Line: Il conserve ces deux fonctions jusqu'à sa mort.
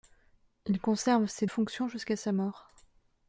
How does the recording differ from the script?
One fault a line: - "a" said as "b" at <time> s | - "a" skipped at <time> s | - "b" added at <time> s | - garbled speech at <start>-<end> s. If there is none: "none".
- "deux" skipped at 1.4 s